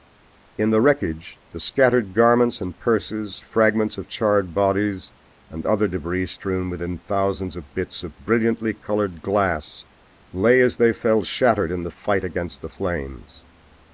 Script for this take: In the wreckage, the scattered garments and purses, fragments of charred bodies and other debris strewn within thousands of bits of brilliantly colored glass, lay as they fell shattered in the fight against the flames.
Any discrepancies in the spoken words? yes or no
no